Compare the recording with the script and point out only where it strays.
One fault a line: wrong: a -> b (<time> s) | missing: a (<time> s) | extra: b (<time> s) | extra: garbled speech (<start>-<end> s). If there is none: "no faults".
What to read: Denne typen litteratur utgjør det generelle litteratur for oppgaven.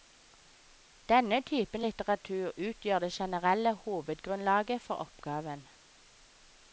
wrong: litteratur -> hovedgrunnlaget (3.8 s)